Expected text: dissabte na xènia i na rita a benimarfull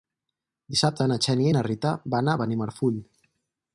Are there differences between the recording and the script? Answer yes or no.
yes